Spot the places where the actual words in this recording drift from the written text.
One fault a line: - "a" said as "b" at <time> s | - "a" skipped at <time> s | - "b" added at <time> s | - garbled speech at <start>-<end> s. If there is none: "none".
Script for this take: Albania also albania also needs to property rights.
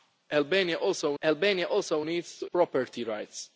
none